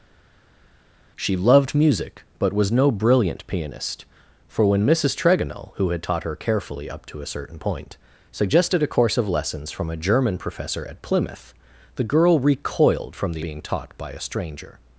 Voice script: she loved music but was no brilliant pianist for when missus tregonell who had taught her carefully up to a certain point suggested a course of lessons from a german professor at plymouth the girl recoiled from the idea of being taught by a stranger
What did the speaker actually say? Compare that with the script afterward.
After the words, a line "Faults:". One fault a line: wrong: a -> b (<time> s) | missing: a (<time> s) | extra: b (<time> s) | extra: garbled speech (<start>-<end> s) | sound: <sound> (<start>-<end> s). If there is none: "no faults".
she loved music but was no brilliant pianist for when missus tregonell who had taught her carefully up to a certain point suggested a course of lessons from a german professor at plymouth the girl recoiled from the being taught by a stranger
Faults:
missing: idea of (13.4 s)